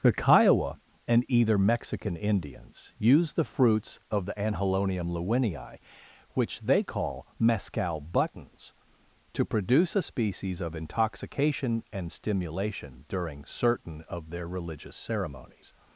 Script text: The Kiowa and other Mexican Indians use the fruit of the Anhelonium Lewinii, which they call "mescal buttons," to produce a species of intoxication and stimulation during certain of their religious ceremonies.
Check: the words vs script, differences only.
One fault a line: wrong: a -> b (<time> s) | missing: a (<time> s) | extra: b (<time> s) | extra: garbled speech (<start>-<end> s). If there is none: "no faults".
wrong: other -> either (1.3 s)
wrong: fruit -> fruits (3.4 s)